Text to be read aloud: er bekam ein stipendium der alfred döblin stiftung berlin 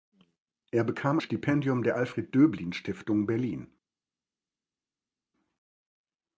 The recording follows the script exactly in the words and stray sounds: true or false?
false